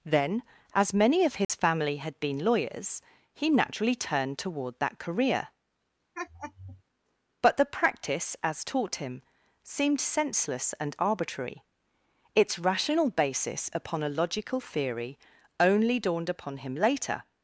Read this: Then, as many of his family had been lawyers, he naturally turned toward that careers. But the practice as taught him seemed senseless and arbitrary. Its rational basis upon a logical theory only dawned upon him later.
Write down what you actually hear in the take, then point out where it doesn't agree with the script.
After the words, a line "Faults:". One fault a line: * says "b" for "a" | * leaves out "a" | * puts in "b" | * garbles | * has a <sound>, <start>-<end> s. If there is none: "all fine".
Then, as many of his family had been lawyers, he naturally turned toward that career. But the practice as taught him seemed senseless and arbitrary. Its rational basis upon a logical theory only dawned upon him later.
Faults:
* has a dropout, 1.4-1.5 s
* says "career" for "careers"
* has a laugh, 6.1-6.8 s